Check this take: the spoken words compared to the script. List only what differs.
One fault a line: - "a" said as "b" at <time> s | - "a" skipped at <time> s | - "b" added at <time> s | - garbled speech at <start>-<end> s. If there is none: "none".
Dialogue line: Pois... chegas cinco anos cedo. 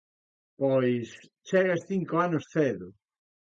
none